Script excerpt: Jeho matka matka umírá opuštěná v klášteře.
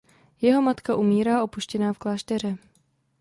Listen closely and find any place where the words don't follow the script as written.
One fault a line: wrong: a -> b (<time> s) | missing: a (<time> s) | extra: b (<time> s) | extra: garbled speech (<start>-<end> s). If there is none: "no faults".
missing: matka (0.9 s)